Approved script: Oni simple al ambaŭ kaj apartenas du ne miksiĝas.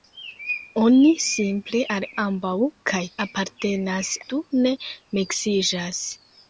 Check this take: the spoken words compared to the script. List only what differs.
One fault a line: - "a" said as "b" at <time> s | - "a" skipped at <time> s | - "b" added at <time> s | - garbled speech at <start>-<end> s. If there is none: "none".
none